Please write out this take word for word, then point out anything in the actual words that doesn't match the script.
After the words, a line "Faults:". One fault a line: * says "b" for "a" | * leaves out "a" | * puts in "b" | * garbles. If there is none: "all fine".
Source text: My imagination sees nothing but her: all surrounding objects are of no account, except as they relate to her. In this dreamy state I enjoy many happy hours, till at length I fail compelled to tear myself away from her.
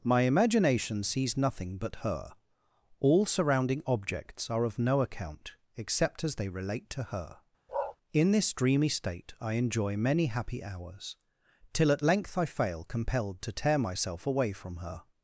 My imagination sees nothing but her: all surrounding objects are of no account, except as they relate to her. In this dreamy state I enjoy many happy hours, till at length I fail compelled to tear myself away from her.
Faults:
all fine